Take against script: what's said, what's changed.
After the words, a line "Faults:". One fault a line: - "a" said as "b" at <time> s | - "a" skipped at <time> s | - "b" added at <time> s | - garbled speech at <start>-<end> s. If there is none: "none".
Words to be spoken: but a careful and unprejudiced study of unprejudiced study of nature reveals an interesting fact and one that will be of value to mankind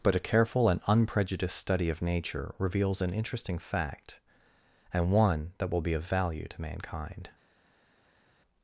but a careful and unprejudiced study of nature reveals an interesting fact and one that will be of value to mankind
Faults:
- "unprejudiced study of" skipped at 2.0 s